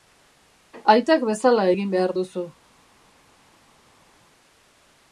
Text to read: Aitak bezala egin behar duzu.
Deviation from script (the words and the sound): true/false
false